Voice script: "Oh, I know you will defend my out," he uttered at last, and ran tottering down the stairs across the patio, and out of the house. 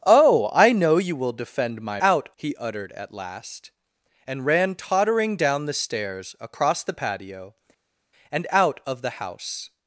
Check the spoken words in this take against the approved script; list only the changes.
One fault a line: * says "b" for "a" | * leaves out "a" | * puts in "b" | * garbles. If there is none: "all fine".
all fine